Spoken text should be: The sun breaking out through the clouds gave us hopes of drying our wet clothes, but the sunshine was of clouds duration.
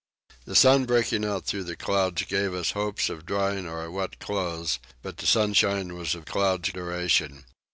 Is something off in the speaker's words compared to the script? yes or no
no